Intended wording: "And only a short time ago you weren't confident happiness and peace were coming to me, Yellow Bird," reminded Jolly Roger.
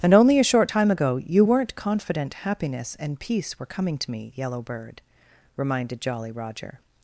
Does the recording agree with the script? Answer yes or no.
yes